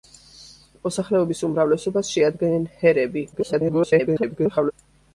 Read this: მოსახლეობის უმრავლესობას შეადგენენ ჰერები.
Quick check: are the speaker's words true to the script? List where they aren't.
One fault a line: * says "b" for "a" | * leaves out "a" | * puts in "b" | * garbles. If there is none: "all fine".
* garbles